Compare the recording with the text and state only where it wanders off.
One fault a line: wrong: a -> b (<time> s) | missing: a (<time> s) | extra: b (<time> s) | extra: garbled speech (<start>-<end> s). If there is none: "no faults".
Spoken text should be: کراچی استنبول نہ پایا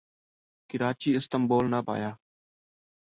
no faults